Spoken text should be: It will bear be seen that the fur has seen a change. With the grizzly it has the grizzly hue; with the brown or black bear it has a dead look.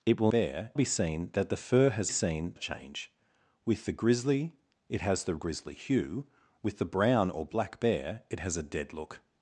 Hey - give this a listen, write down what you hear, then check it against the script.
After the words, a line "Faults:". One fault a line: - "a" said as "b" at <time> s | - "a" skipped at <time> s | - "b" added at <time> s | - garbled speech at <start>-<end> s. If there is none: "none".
It will bear be seen that the fur has seen a change. With the grizzly it has the grizzly hue; with the brown or black bear it has a dead look.
Faults:
none